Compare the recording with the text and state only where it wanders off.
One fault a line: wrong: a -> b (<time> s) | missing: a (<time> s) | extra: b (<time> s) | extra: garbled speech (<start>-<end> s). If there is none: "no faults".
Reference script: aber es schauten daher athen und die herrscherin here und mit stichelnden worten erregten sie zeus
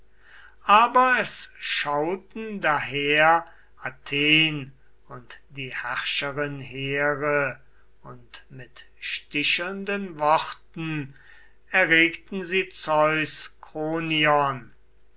no faults